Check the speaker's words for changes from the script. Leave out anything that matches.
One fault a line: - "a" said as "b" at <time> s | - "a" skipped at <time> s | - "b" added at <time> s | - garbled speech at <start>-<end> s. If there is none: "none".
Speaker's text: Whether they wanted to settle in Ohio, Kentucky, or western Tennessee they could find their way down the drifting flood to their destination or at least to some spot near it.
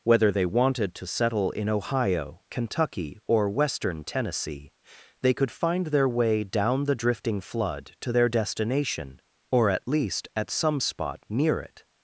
- "to" said as "at" at 10.4 s